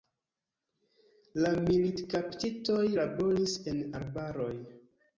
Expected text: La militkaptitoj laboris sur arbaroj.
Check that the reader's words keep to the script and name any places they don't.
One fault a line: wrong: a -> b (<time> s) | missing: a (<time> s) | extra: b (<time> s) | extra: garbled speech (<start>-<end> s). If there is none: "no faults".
wrong: sur -> en (3.8 s)